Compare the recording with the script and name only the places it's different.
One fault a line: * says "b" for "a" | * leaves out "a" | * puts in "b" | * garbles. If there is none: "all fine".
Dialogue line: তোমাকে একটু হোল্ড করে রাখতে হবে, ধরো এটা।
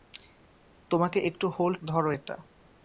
* leaves out "করে রাখতে হবে"